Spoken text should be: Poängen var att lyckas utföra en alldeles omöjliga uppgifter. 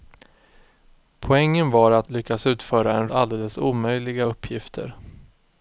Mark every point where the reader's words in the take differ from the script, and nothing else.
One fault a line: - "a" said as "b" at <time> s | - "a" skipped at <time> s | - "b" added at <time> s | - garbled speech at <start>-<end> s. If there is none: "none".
none